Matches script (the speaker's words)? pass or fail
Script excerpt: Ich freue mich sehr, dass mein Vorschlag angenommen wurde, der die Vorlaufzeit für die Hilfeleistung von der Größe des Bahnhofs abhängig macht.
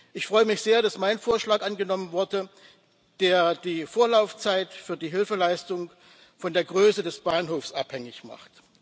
pass